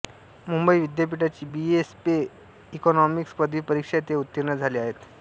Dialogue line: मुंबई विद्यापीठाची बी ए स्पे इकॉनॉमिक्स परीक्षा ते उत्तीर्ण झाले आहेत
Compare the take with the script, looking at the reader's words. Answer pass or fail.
fail